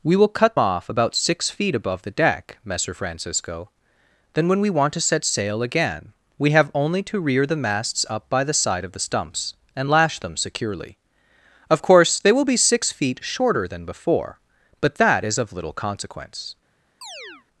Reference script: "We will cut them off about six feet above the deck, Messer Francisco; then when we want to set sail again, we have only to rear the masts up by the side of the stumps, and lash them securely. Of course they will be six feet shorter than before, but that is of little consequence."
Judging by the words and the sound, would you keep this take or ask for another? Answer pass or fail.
fail